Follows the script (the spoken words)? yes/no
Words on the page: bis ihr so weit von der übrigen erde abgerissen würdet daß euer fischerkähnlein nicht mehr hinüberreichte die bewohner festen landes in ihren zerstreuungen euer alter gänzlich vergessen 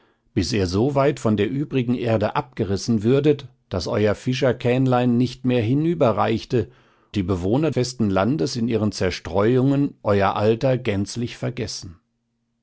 yes